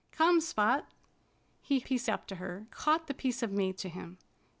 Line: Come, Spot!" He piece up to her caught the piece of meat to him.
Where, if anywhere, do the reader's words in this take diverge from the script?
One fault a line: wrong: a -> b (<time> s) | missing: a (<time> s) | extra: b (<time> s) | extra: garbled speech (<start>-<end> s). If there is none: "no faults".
no faults